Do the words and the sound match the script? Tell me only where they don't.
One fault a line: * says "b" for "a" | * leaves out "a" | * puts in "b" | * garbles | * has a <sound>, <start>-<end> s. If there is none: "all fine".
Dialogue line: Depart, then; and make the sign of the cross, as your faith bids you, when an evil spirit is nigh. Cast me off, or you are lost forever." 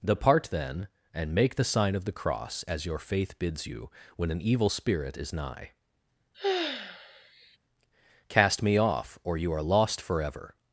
* has a sigh, 6.3-7.6 s